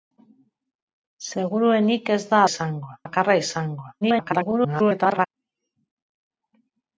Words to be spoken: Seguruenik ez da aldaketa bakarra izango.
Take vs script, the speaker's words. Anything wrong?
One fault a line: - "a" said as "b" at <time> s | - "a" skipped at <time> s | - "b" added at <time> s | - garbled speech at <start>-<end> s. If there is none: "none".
- "aldaketa" said as "izango" at 2.5 s
- garbled speech at 4.0-5.3 s